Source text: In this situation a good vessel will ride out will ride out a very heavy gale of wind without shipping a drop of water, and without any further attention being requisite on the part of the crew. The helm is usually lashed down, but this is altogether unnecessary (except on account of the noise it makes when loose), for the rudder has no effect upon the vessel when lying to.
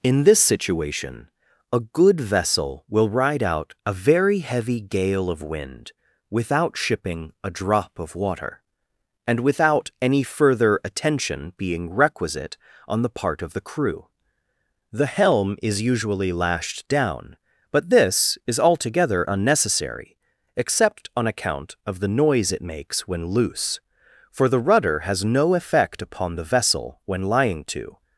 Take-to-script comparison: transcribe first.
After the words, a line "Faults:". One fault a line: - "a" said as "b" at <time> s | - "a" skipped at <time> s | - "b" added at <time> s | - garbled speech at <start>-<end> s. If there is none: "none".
In this situation a good vessel will ride out a very heavy gale of wind without shipping a drop of water, and without any further attention being requisite on the part of the crew. The helm is usually lashed down, but this is altogether unnecessary (except on account of the noise it makes when loose), for the rudder has no effect upon the vessel when lying to.
Faults:
- "will ride out" skipped at 3.8 s